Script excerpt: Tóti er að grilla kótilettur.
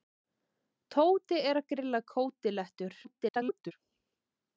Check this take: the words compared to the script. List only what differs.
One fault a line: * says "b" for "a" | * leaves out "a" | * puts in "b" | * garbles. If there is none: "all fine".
* garbles